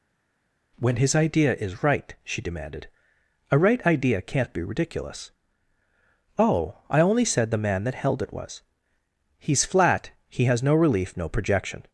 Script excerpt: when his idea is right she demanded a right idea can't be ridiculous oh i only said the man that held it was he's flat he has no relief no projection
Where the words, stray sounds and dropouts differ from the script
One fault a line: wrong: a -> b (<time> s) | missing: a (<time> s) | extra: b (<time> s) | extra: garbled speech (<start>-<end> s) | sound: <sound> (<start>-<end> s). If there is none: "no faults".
no faults